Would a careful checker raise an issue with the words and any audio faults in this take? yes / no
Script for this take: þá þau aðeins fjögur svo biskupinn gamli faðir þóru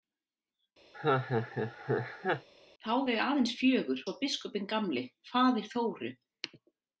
yes